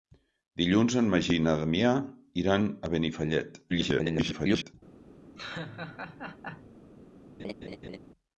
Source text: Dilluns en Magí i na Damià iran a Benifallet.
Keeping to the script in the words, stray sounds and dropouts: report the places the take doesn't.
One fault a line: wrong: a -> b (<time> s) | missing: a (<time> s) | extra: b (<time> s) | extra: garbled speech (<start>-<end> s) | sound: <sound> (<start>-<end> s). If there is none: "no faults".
extra: garbled speech (3.7-4.7 s)
sound: laugh (5.4-6.7 s)
sound: laugh (7.4-8.0 s)